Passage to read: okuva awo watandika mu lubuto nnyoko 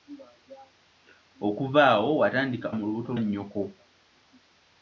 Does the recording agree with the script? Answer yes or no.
yes